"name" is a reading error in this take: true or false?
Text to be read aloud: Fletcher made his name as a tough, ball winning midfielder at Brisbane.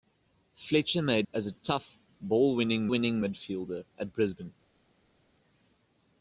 true